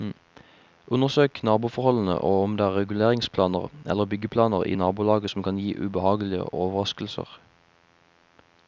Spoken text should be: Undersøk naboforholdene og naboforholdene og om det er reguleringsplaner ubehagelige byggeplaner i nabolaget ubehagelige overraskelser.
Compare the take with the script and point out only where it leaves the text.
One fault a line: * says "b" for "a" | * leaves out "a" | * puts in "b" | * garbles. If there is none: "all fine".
* leaves out "naboforholdene og"
* says "eller" for "ubehagelige"
* puts in "som kan gi"